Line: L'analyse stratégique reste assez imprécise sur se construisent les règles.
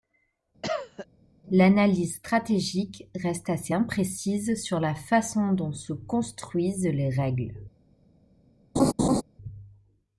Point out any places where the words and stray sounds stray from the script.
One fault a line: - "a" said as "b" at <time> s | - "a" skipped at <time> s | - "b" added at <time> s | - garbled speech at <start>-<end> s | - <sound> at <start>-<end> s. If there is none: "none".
- cough at 0.6-1.1 s
- "la façon dont" added at 4.8 s
- laugh at 8.8-9.2 s